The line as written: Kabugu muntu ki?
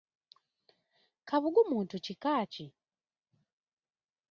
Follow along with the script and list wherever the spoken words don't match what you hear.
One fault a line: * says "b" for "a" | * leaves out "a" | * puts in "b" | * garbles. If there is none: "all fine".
* puts in "kika"